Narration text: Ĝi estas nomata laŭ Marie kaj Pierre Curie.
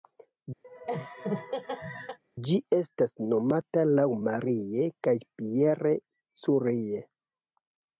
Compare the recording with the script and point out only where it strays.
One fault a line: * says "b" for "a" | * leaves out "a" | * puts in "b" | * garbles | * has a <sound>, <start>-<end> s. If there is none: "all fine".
* has a laugh, 0.6-2.2 s